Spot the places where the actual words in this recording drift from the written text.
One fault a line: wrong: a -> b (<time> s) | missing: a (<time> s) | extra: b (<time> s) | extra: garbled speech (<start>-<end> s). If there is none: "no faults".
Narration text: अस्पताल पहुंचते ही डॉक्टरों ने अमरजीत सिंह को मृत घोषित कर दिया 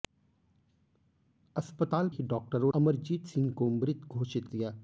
missing: पहुंचते (2.1 s)
missing: ने (2.7 s)
missing: कर (4.5 s)